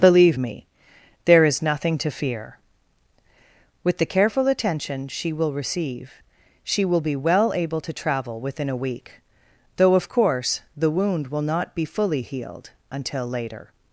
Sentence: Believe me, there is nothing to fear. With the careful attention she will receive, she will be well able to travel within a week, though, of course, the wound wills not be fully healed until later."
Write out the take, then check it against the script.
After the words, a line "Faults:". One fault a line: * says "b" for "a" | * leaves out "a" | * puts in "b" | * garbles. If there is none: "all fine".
Believe me, there is nothing to fear. With the careful attention she will receive, she will be well able to travel within a week, though, of course, the wound will not be fully healed until later."
Faults:
* says "will" for "wills"